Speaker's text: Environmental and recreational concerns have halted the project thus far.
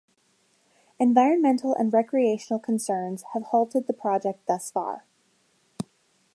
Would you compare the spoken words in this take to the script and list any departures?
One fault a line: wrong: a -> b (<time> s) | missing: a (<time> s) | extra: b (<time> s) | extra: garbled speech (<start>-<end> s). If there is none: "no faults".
no faults